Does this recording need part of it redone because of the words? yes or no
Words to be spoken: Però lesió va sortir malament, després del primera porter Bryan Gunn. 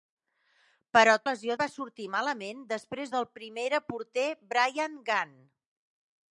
no